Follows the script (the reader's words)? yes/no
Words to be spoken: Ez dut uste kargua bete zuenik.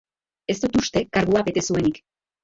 yes